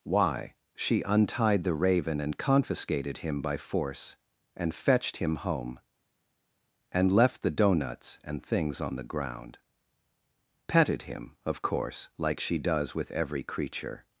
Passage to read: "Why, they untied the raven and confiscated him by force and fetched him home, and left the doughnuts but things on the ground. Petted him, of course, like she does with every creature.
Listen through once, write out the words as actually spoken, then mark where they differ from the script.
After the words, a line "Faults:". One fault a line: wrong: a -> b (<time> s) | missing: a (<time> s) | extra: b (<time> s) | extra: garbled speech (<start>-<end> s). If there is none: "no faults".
"Why, she untied the raven and confiscated him by force and fetched him home, and left the doughnuts and things on the ground. Petted him, of course, like she does with every creature.
Faults:
wrong: they -> she (0.8 s)
wrong: but -> and (8.2 s)